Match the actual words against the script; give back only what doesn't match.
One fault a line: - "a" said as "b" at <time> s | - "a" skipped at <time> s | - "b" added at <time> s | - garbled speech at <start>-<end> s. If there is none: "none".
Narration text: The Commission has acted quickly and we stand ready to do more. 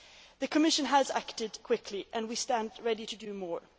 none